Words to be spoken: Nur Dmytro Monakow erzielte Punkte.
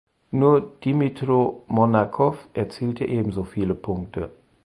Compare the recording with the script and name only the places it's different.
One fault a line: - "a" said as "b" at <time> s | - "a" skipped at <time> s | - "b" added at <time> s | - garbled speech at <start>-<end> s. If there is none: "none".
- "ebenso viele" added at 3.0 s